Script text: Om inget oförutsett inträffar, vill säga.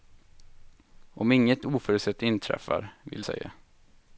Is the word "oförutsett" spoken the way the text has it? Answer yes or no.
yes